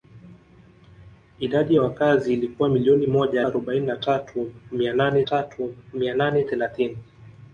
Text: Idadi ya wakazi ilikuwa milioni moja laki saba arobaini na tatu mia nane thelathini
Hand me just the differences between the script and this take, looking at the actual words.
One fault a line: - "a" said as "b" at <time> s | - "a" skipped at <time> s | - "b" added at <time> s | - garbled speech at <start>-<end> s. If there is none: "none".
- "laki saba arobaini na" said as "arobaini na tatu mia nane" at 3.4 s